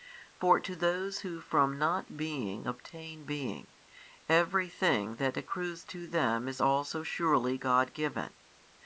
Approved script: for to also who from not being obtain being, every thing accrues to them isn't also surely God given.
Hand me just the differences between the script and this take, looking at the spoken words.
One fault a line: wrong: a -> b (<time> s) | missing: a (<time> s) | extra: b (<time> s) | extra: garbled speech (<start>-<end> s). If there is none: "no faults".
wrong: also -> those (0.8 s)
extra: that (5.2 s)
wrong: isn't -> is (6.5 s)